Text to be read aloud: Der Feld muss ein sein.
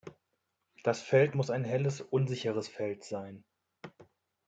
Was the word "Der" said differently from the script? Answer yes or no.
yes